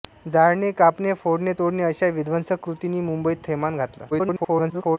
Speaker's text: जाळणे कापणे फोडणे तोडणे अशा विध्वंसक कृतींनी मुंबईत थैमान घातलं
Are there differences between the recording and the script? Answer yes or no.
yes